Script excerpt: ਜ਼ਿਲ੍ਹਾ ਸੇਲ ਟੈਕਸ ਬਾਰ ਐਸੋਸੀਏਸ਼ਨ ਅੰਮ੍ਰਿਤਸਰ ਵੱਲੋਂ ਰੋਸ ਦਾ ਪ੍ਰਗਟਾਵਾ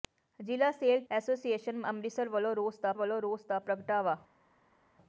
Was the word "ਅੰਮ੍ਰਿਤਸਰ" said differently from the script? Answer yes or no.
yes